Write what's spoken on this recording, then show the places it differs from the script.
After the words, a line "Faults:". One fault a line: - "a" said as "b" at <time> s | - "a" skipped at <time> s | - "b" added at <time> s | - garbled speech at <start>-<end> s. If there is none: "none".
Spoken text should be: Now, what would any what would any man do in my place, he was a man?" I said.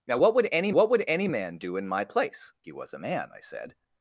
Now, what would any what would any man do in my place, he was a man?" I said.
Faults:
none